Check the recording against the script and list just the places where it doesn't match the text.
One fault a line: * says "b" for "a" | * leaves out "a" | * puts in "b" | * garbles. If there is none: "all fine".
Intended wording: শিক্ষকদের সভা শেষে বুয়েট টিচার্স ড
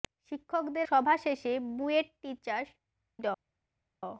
all fine